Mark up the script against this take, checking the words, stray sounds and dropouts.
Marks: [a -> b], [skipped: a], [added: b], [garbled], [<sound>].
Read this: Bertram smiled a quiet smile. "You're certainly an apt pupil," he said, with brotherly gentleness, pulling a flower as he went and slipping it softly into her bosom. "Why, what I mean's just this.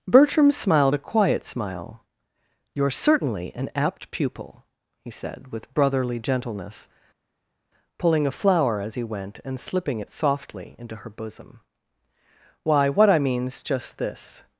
Bertram smiled a quiet smile. "You're certainly an apt pupil," he said, with brotherly gentleness, pulling a flower as he went and slipping it softly into her bosom. "Why, what I mean's just this.